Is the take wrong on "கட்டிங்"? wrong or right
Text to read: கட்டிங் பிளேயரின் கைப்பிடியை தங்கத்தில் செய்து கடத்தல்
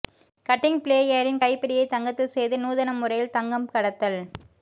right